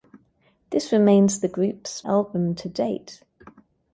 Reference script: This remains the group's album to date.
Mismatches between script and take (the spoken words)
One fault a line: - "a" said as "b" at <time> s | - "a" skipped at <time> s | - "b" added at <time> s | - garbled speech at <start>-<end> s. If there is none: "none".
none